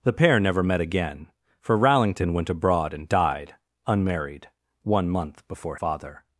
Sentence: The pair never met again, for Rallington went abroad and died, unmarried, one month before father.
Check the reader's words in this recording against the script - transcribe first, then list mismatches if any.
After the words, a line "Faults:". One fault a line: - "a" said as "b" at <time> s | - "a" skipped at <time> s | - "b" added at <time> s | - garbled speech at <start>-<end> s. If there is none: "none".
The pair never met again, for Rallington went abroad and died, unmarried, one month before father.
Faults:
none